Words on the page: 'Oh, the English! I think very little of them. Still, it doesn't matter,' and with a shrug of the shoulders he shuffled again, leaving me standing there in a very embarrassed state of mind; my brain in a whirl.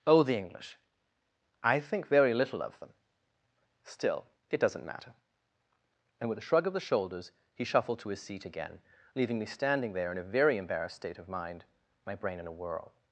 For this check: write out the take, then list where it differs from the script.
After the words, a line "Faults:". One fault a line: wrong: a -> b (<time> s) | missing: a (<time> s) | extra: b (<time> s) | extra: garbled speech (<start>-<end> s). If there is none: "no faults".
'Oh, the English! I think very little of them. Still, it doesn't matter,' and with a shrug of the shoulders he shuffled to his seat again, leaving me standing there in a very embarrassed state of mind; my brain in a whirl.
Faults:
extra: to his seat (8.0 s)